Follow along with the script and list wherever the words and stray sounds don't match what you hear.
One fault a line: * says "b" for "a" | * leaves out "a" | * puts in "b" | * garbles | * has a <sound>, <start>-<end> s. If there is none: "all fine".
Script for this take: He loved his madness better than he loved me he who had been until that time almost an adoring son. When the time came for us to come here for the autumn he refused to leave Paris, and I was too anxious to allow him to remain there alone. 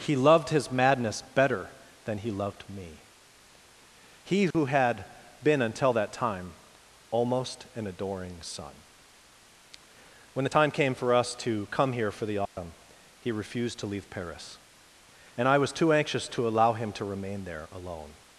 * has a dropout, 4.5-4.5 s
* has a dropout, 12.5-12.6 s